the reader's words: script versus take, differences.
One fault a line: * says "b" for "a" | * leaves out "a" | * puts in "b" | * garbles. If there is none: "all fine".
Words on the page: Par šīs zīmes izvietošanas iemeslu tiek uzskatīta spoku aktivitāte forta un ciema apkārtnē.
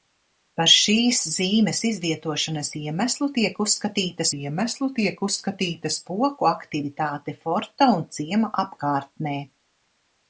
* puts in "iemeslu tiek uzskatīta"